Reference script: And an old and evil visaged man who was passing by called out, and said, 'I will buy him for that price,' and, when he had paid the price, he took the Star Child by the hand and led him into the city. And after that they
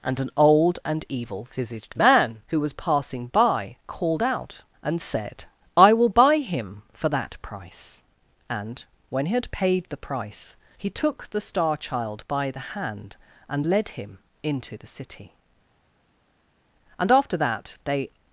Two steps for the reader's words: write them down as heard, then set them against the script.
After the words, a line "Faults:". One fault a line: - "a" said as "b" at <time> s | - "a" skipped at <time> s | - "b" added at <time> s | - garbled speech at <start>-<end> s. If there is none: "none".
And an old and evil visaged man who was passing by called out, and said, 'I will buy him for that price,' and, when he had paid the price, he took the Star Child by the hand and led him into the city. And after that they
Faults:
none